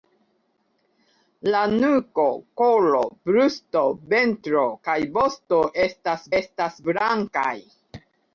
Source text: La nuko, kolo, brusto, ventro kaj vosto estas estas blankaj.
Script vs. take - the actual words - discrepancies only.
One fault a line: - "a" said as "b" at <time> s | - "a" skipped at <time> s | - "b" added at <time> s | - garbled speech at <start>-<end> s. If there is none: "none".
none